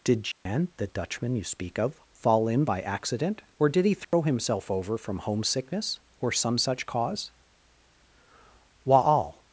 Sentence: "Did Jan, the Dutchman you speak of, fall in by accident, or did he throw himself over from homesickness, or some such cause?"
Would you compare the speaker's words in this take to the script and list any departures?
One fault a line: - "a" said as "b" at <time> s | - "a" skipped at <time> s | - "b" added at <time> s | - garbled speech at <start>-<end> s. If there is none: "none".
- "Wa'al" added at 8.8 s